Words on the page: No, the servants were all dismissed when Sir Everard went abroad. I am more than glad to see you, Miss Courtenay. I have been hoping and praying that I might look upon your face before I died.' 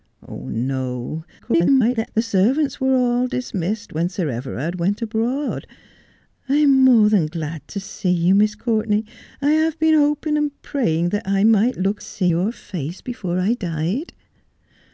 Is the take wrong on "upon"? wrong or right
wrong